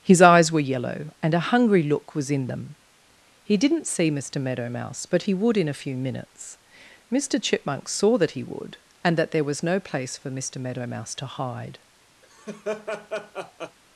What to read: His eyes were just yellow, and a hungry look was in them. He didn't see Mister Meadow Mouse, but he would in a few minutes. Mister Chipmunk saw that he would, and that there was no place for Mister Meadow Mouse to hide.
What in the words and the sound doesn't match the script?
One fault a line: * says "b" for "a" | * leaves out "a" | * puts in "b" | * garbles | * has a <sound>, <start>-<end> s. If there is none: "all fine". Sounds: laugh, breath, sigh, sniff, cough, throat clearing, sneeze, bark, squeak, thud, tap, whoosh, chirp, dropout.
* leaves out "just"
* has a laugh, 12.2-13.8 s